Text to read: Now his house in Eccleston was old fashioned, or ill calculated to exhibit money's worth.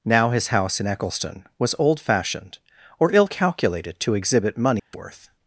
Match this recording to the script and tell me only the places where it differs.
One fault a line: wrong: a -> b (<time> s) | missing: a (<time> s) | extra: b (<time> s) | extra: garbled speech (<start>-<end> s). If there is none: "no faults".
no faults